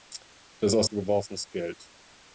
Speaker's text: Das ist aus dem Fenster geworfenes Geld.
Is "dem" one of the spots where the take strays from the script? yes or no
yes